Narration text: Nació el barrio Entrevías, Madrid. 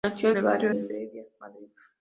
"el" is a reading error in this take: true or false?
false